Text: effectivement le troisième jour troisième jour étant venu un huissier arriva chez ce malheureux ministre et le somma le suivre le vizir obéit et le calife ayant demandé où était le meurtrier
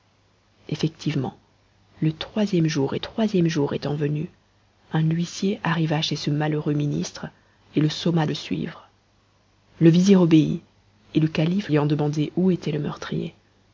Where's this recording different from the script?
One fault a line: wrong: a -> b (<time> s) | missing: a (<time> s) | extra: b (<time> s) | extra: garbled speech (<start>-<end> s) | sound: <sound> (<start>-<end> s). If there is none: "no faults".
no faults